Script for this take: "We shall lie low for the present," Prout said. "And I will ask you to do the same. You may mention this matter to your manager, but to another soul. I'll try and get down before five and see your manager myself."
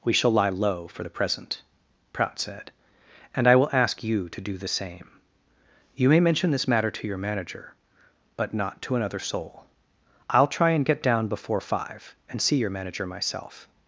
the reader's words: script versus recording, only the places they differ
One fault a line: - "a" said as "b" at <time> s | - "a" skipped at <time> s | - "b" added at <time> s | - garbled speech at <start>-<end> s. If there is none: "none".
- "not" added at 8.5 s